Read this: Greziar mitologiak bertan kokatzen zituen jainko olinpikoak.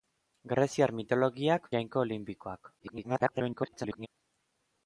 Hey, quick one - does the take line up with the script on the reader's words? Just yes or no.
no